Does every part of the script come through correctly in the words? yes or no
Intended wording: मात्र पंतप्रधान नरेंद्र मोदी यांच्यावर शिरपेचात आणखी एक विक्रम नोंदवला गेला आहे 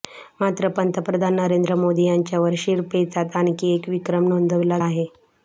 no